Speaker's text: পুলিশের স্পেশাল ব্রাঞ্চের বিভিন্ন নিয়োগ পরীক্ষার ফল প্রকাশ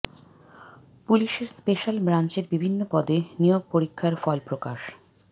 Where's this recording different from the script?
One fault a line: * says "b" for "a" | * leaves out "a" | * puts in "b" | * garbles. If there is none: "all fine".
* puts in "পদে"